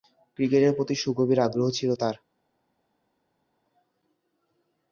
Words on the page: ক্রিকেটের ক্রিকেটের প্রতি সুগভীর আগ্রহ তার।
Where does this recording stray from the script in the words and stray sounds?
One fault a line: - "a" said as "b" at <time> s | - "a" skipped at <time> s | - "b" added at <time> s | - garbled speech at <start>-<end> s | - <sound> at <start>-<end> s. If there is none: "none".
- "ক্রিকেটের" skipped at 0.7 s
- "ছিল" added at 1.7 s